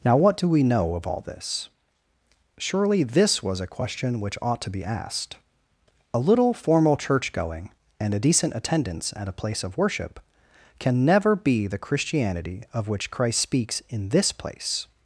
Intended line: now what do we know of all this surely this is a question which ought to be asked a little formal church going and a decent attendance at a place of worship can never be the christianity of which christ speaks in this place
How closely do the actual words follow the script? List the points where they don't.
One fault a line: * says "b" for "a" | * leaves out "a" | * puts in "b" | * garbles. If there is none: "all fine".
* says "was" for "is"